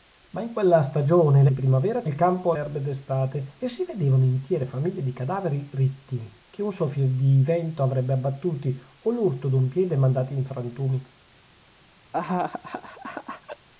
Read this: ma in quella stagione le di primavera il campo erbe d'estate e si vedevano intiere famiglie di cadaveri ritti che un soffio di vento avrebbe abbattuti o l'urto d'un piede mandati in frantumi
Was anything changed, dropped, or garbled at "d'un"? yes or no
no